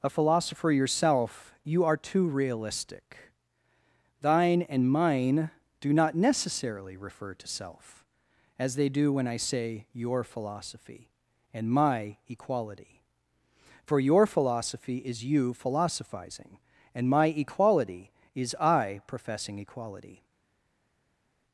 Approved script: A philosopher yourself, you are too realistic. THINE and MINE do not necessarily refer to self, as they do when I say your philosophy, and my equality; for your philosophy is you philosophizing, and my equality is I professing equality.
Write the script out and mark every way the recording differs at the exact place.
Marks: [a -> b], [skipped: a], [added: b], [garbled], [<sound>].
A philosopher yourself, you are too realistic. THINE and MINE do not necessarily refer to self, as they do when I say your philosophy, and my equality; for your philosophy is you philosophizing, and my equality is I professing equality.